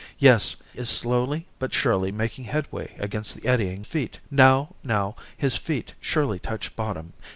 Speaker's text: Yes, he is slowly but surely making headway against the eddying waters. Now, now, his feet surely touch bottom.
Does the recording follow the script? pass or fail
fail